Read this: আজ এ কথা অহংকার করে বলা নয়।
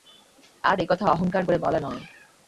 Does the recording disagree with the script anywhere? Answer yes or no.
no